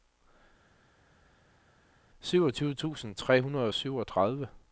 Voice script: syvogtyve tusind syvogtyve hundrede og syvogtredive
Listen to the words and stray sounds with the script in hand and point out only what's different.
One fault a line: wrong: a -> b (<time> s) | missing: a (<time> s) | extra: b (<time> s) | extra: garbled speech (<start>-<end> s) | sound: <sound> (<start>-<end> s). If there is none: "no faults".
wrong: syvogtyve -> tre (3.1 s)